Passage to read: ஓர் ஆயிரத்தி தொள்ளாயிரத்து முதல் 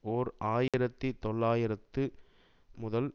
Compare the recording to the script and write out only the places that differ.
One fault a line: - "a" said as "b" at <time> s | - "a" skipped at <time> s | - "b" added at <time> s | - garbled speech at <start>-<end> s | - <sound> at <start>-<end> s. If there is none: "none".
- dropout at 0.7-0.7 s